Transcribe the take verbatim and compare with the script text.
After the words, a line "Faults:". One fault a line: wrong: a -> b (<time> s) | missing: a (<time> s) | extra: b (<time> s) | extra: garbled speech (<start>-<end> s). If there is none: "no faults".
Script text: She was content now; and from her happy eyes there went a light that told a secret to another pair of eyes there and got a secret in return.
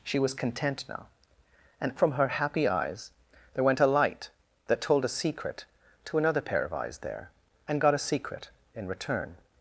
She was content now; and from her happy eyes there went a light that told a secret to another pair of eyes there and got a secret in return.
Faults:
no faults